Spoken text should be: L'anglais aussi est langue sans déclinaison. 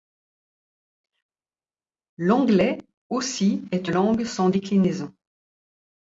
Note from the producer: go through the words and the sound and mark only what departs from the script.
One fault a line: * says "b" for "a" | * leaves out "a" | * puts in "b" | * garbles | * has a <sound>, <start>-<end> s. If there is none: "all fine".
all fine